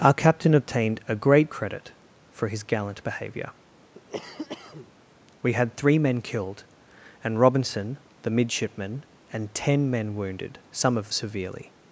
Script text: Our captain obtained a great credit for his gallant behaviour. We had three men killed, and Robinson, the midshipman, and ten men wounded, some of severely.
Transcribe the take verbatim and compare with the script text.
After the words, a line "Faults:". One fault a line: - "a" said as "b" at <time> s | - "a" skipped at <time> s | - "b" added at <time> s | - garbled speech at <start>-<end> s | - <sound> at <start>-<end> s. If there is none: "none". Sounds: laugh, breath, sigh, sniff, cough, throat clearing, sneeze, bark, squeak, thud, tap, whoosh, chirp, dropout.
Our captain obtained a great credit for his gallant behaviour. We had three men killed, and Robinson, the midshipman, and ten men wounded, some of severely.
Faults:
- cough at 3.9-4.9 s